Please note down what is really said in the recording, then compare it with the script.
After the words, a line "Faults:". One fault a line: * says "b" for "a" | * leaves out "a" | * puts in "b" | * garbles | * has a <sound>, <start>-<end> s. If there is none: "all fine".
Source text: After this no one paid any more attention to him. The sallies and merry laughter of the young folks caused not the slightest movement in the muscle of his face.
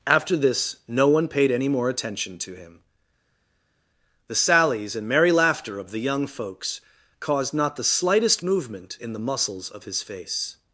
After this no one paid any more attention to him. The sallies and merry laughter of the young folks caused not the slightest movement in the muscles of his face.
Faults:
* says "muscles" for "muscle"